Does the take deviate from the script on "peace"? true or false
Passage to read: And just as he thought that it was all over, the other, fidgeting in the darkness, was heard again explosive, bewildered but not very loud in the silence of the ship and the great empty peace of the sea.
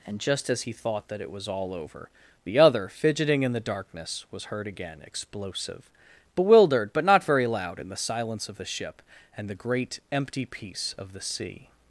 false